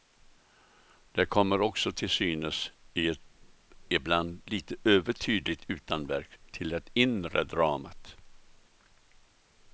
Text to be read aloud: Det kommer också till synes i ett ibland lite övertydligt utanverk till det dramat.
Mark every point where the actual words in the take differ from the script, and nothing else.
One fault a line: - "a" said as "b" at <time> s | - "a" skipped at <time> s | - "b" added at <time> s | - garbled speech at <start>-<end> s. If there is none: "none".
- "inre" added at 6.9 s